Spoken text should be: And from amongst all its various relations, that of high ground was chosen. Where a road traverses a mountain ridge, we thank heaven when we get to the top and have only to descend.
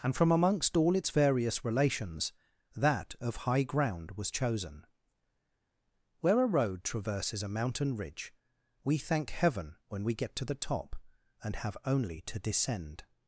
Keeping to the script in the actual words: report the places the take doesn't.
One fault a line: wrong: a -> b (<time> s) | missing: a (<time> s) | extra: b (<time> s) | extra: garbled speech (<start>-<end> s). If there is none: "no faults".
no faults